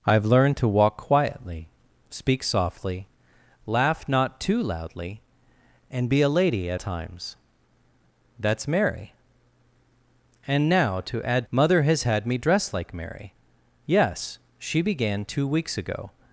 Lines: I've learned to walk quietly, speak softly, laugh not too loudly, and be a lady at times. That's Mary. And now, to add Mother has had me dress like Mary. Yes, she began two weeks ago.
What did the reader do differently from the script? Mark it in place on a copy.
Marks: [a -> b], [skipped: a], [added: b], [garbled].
I've learned to walk quietly, speak softly, laugh not too loudly, and be a lady at times. That's Mary. And now, to add Mother has had me dress like Mary. Yes, she began two weeks ago.